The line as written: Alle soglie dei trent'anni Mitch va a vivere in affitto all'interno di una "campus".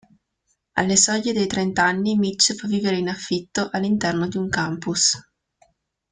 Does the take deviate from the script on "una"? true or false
true